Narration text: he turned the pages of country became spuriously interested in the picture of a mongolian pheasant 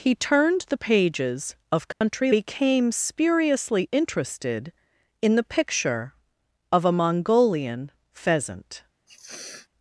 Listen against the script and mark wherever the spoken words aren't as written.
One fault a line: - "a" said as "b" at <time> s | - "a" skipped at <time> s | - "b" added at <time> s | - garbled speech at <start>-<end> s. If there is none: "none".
none